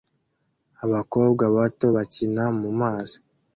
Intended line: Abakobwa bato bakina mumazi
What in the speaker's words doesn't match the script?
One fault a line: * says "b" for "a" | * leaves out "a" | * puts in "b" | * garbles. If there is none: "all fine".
all fine